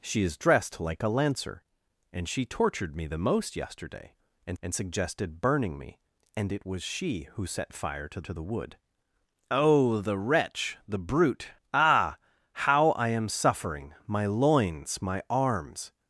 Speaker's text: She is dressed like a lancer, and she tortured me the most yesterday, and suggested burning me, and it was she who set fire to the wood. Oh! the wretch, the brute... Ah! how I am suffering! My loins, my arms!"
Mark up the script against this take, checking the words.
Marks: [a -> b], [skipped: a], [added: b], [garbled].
She is dressed like a lancer, and she tortured me the most yesterday, and [added: and] suggested burning me, and it was she who set fire to [added: to] the wood. Oh! the wretch, the brute... Ah! how I am suffering! My loins, my arms!"